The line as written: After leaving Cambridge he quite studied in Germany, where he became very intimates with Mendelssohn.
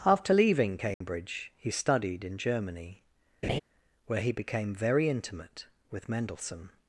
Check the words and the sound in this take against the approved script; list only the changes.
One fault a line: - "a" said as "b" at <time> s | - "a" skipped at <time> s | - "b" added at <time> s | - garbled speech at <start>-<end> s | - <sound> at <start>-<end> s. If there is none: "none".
- dropout at 0.9-1.0 s
- "quite" skipped at 1.7 s
- laugh at 3.4-3.6 s
- "intimates" said as "intimate" at 5.1 s